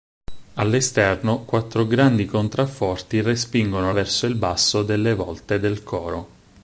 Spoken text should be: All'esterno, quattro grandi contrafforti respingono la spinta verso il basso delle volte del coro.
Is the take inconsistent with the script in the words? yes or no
yes